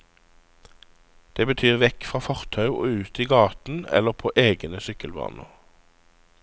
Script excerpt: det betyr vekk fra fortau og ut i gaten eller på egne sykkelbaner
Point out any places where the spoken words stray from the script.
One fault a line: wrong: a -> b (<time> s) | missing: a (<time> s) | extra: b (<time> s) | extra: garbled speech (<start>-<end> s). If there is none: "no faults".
no faults